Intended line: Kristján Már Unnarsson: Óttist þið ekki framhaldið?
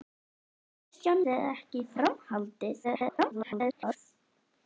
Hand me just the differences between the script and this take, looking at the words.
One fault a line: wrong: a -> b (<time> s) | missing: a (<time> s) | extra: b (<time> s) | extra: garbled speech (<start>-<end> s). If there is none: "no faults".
missing: Már Unnarsson Óttist (1.2 s)
extra: garbled speech (2.8-4.0 s)